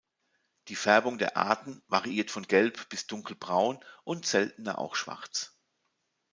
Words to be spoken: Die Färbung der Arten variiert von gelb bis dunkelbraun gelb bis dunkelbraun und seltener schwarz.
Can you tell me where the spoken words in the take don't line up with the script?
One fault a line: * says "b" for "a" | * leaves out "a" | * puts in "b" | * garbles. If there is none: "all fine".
* leaves out "gelb bis dunkelbraun"
* puts in "auch"